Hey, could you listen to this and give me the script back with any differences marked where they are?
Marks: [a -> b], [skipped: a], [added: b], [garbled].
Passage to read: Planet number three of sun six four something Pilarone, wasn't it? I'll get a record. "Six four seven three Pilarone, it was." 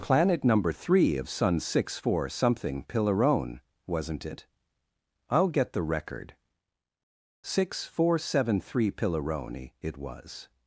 Planet number three of sun six four something Pilarone, wasn't it? I'll get [a -> the] record. "Six four seven three Pilarone, it was."